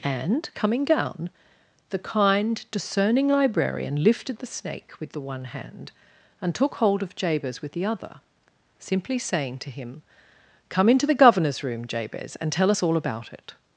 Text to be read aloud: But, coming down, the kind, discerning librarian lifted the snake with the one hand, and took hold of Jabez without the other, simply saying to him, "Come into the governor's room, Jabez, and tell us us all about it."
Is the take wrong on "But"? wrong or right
wrong